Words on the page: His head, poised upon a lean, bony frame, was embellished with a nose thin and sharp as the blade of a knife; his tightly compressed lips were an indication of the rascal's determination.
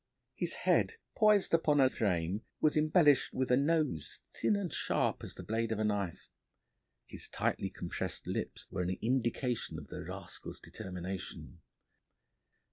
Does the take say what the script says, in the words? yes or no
no